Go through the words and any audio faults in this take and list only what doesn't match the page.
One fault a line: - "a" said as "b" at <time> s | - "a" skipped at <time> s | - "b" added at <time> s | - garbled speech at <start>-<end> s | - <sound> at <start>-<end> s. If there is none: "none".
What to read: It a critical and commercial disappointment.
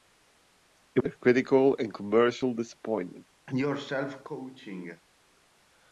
- cough at 3.5-5.0 s